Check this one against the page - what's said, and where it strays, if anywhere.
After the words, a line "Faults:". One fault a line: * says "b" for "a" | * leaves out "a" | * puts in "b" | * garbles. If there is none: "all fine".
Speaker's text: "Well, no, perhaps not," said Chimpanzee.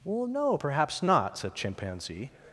"Well, no, perhaps not," said Chimpanzee.
Faults:
all fine